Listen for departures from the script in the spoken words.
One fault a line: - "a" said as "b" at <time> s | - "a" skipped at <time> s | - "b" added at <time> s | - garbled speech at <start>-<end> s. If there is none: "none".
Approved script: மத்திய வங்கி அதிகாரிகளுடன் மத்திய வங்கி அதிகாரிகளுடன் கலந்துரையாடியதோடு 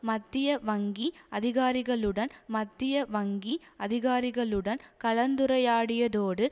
none